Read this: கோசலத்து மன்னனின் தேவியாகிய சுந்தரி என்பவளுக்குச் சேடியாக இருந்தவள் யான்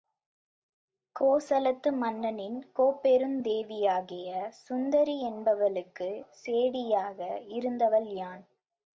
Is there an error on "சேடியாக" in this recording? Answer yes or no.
no